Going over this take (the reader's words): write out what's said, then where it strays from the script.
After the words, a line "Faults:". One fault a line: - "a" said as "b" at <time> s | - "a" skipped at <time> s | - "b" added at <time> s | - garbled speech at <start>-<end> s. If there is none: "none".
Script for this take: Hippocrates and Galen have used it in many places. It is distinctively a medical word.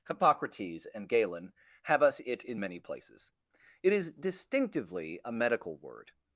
Hippocrates and Galen have us it in many places. It is distinctively a medical word.
Faults:
- "used" said as "us" at 2.0 s